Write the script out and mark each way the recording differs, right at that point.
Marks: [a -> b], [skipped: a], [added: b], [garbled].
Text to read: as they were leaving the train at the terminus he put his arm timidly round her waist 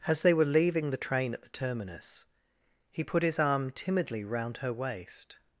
as they were leaving the train at the terminus he put his arm timidly round her waist